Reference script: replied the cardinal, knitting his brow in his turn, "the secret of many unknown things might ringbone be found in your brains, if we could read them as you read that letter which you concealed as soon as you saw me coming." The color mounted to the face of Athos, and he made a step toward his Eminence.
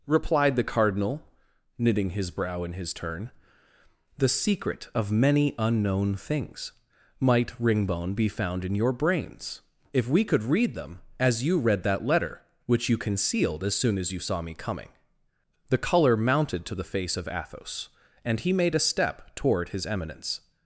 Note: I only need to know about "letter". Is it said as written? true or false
true